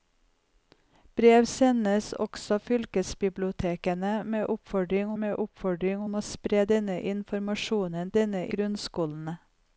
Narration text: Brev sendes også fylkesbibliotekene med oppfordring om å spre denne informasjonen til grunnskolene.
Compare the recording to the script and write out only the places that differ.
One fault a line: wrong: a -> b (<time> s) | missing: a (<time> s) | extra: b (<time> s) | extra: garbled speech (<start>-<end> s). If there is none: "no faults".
extra: med oppfordring (5.2 s)
wrong: til -> denne (8.2 s)